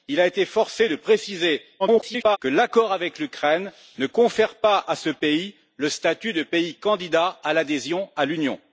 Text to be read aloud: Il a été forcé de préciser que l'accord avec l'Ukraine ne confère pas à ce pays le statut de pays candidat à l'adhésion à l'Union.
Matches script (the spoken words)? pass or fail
fail